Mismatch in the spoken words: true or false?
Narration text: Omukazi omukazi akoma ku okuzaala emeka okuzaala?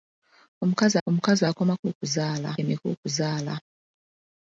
false